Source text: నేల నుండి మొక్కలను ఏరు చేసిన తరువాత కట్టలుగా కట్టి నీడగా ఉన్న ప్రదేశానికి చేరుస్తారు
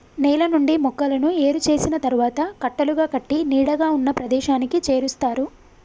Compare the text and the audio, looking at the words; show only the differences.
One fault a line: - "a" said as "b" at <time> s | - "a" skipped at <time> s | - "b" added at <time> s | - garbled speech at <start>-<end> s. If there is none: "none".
none